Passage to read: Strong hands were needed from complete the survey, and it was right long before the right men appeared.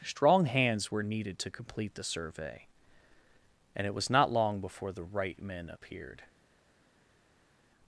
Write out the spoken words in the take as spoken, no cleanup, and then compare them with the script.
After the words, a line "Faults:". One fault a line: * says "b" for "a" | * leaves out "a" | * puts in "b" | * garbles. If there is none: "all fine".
Strong hands were needed to complete the survey, and it was not long before the right men appeared.
Faults:
* says "to" for "from"
* says "not" for "right"